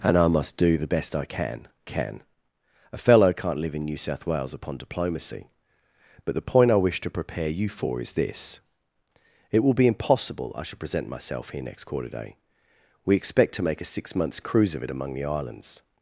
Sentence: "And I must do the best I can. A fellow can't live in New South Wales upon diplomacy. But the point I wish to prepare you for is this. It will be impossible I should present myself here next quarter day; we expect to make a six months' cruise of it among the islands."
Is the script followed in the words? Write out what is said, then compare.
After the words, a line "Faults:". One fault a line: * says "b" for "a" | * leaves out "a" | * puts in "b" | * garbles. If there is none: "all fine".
"And I must do the best I can can. A fellow can't live in New South Wales upon diplomacy. But the point I wish to prepare you for is this. It will be impossible I should present myself here next quarter day; we expect to make a six months' cruise of it among the islands."
Faults:
* puts in "can"